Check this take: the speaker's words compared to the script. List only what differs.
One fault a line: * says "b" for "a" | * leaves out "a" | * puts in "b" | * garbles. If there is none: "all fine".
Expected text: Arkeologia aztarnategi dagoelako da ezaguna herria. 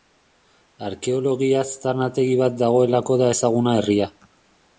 * puts in "bat"